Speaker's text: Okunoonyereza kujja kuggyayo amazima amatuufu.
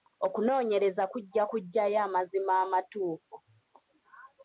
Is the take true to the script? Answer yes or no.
yes